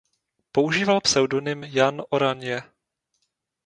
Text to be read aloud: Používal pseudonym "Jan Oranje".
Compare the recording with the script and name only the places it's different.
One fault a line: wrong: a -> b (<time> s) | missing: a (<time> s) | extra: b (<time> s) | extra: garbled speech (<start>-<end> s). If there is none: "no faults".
no faults